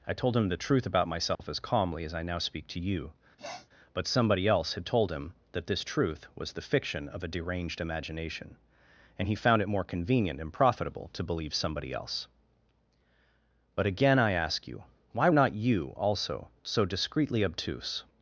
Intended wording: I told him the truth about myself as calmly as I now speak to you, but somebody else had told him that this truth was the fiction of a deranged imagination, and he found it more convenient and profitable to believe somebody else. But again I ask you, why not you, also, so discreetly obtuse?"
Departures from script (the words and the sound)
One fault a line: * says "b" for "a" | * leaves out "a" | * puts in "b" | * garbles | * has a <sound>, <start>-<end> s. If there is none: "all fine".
* has a dropout, 1.3-1.4 s
* has a sniff, 3.4-3.7 s